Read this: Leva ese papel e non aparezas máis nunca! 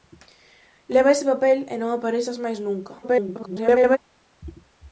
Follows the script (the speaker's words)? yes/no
no